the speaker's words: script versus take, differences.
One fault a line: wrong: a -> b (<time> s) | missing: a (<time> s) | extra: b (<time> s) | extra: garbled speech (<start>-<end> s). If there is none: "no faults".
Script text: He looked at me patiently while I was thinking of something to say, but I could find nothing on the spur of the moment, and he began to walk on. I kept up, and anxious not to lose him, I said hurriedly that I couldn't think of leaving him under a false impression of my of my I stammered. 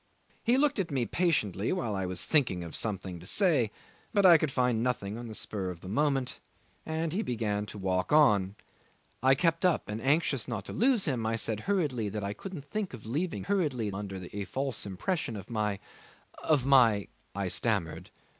wrong: him -> hurriedly (13.5 s)